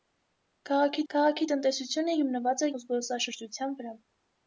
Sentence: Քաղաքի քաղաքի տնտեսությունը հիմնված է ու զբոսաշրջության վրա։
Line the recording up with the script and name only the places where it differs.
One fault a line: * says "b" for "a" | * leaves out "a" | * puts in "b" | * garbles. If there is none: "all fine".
all fine